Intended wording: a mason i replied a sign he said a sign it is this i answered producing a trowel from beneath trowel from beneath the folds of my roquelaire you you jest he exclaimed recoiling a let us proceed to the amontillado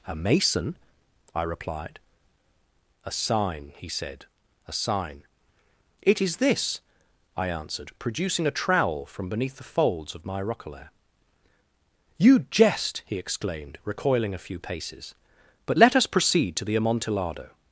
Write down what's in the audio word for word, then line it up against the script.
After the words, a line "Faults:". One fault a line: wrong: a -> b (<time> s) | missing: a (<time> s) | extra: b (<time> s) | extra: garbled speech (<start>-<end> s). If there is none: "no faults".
a mason i replied a sign he said a sign it is this i answered producing a trowel from beneath the folds of my roquelaire you jest he exclaimed recoiling a few paces but let us proceed to the amontillado
Faults:
missing: trowel from beneath (9.6 s)
missing: you (12.4 s)
extra: few paces but (14.4 s)